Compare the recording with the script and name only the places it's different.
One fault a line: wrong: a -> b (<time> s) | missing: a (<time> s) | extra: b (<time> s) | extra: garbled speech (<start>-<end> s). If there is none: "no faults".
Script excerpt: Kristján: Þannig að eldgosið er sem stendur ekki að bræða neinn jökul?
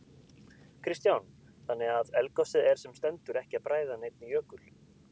no faults